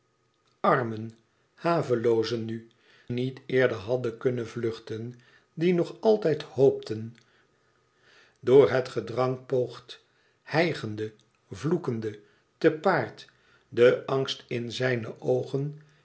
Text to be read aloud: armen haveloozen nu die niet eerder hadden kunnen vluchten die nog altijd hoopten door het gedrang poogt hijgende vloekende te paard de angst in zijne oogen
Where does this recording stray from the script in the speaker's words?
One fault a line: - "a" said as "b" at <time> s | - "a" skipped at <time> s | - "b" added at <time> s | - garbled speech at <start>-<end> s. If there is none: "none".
- "die" skipped at 2.7 s